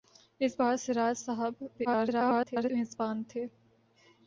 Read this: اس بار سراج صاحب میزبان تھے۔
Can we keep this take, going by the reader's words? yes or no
no